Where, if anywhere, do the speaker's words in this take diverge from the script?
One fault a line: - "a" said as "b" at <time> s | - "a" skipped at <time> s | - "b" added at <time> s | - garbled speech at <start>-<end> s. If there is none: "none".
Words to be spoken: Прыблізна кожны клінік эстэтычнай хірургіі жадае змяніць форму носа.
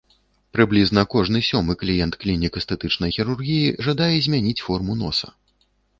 - "сёмы кліент" added at 1.5 s